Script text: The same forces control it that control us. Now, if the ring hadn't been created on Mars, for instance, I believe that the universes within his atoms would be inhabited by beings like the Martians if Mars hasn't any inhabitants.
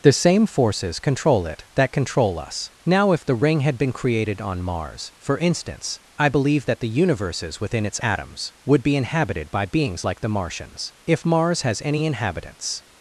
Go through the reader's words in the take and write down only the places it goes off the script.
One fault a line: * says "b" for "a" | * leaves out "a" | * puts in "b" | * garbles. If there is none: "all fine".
* says "had" for "hadn't"
* says "its" for "his"
* says "has" for "hasn't"